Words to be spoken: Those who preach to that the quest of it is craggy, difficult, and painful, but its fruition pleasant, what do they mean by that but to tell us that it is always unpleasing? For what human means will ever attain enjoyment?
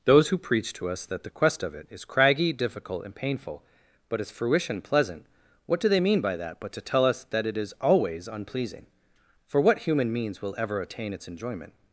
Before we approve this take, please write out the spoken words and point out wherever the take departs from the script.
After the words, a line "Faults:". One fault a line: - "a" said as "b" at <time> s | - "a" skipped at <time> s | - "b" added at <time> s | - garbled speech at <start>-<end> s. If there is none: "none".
Those who preach to us that the quest of it is craggy, difficult, and painful, but its fruition pleasant, what do they mean by that but to tell us that it is always unpleasing? For what human means will ever attain its enjoyment?
Faults:
- "us" added at 0.9 s
- "its" added at 11.1 s